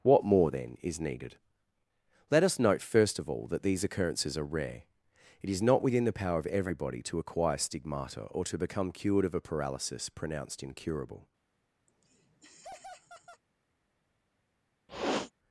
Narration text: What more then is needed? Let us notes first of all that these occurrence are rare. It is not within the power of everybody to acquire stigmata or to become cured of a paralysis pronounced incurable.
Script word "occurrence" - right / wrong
wrong